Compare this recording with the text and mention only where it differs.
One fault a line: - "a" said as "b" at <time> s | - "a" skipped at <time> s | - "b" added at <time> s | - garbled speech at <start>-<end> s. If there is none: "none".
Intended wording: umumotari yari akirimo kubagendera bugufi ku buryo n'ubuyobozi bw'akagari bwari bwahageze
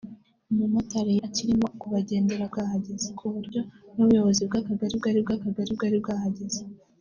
- "yari" skipped at 1.1 s
- "bugufi" said as "bwahageze" at 2.5 s
- "bw'akagari bwari" added at 5.2 s